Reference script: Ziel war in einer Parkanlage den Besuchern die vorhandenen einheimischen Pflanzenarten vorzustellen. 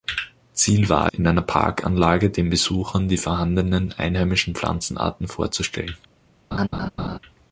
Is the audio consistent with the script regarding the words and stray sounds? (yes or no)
no